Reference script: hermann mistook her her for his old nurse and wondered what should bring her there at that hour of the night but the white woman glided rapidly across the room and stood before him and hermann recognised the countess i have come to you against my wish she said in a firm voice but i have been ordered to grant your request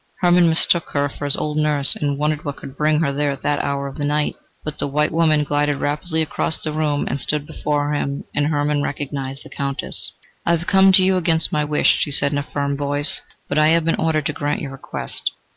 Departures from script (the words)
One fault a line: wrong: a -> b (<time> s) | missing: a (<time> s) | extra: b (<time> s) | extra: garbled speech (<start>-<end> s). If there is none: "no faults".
missing: her (1.1 s)
wrong: should -> could (2.6 s)